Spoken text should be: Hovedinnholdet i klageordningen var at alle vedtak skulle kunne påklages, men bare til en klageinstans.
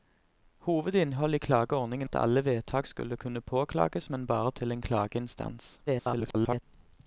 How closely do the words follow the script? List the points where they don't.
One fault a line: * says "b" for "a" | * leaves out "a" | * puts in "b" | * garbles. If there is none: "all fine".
* leaves out "var"
* garbles